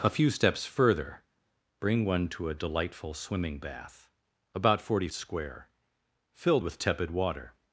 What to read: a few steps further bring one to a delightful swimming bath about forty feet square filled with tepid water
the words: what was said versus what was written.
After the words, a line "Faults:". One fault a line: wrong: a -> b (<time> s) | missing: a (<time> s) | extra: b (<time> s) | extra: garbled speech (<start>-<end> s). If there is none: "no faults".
a few steps further bring one to a delightful swimming bath about forty square filled with tepid water
Faults:
missing: feet (5.1 s)